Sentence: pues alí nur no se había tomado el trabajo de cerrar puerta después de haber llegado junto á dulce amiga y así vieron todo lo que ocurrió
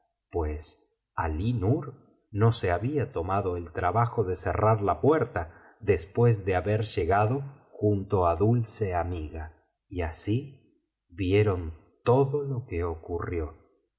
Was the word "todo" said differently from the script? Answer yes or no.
no